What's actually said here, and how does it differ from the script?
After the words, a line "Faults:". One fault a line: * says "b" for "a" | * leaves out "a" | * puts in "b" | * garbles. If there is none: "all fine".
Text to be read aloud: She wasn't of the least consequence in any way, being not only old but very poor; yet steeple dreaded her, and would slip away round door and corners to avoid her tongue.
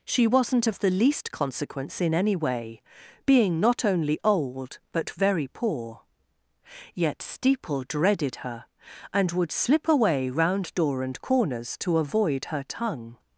She wasn't of the least consequence in any way, being not only old but very poor; yet steeple dreaded her, and would slip away round door and corners to avoid her tongue.
Faults:
all fine